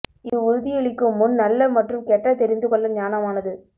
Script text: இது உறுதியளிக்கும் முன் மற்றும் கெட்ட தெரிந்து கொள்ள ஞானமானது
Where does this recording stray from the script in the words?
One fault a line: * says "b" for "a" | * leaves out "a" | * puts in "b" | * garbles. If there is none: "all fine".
* puts in "நல்ல"